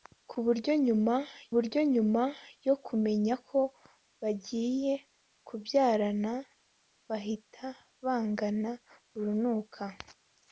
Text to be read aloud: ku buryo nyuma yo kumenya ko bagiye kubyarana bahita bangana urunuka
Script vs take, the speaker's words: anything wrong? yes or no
yes